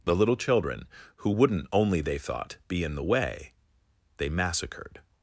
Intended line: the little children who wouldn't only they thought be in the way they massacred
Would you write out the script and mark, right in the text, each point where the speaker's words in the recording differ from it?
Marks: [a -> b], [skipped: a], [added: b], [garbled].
the little children who wouldn't only they thought be in the way they massacred